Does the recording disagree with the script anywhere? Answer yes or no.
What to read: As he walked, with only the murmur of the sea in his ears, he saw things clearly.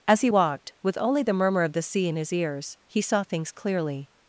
no